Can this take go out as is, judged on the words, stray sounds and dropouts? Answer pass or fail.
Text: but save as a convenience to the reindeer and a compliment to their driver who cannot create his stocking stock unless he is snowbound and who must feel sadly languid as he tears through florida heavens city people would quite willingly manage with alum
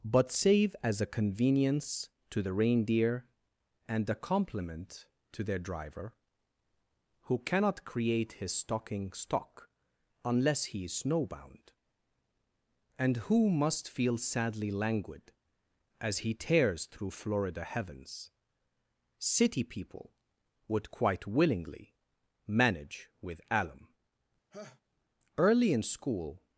fail